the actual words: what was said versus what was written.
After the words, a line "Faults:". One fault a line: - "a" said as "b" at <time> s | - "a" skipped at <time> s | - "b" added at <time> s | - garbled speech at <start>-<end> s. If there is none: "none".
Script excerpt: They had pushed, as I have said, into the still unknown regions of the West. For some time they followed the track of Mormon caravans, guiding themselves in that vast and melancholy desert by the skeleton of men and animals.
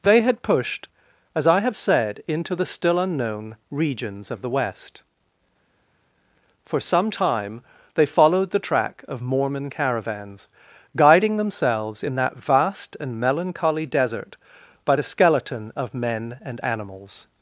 They had pushed, as I have said, into the still unknown regions of the West. For some time they followed the track of Mormon caravans, guiding themselves in that vast and melancholy desert by the skeleton of men and animals.
Faults:
none